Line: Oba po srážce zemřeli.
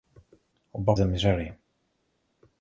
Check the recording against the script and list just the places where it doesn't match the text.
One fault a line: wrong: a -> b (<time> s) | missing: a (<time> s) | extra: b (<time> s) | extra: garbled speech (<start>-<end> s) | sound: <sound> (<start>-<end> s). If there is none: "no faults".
missing: po srážce (0.9 s)